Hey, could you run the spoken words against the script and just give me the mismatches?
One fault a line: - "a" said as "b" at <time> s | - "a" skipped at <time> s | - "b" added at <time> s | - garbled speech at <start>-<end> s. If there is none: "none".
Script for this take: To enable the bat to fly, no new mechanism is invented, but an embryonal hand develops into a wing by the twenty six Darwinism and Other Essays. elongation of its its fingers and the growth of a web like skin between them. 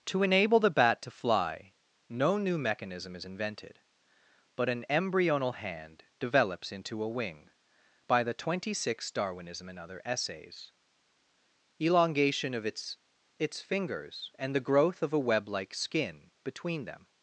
none